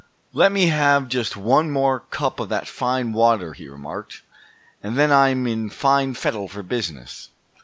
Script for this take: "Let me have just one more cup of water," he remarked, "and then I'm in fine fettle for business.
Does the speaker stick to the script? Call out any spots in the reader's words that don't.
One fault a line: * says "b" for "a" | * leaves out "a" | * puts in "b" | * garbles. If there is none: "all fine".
* puts in "that fine"